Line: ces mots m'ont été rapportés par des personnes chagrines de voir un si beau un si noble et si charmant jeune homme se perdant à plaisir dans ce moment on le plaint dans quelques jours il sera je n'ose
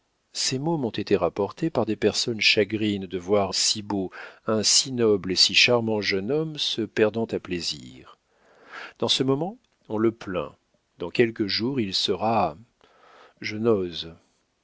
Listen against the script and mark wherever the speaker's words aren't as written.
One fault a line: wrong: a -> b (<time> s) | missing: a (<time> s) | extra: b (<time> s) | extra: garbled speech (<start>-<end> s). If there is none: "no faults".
missing: un (3.5 s)